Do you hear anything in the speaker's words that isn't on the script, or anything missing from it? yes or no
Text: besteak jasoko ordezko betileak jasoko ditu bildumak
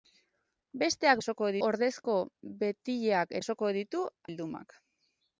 no